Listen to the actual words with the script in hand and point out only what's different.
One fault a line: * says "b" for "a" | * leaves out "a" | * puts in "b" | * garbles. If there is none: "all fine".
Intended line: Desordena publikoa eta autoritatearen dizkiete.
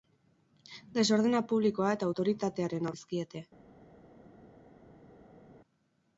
all fine